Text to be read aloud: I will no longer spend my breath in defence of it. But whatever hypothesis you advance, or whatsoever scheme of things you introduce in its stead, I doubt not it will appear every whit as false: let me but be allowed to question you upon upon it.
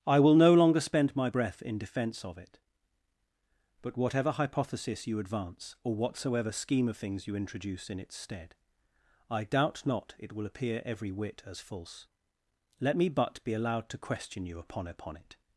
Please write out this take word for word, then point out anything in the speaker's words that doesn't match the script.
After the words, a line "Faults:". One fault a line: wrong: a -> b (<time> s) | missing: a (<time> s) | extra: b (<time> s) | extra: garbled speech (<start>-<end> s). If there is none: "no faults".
I will no longer spend my breath in defence of it. But whatever hypothesis you advance, or whatsoever scheme of things you introduce in its stead, I doubt not it will appear every whit as false: let me but be allowed to question you upon upon it.
Faults:
no faults